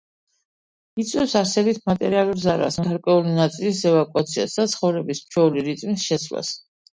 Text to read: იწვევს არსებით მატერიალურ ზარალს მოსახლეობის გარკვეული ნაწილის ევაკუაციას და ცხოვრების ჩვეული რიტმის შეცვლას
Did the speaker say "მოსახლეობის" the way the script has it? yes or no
no